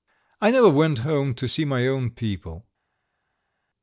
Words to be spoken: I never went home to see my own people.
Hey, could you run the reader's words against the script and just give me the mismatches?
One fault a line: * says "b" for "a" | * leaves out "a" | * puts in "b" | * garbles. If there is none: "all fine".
all fine